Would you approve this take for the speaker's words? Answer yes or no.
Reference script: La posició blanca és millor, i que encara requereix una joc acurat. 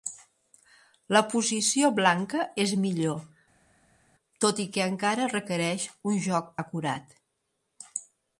no